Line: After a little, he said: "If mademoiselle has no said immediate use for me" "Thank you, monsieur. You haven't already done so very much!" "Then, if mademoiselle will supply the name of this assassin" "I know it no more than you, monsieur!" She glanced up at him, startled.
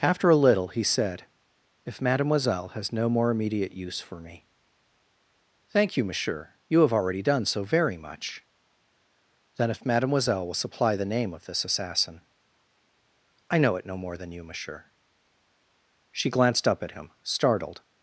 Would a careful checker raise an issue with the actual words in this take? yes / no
yes